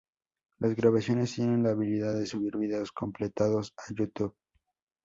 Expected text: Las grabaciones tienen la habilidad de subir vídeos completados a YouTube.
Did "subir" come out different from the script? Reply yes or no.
no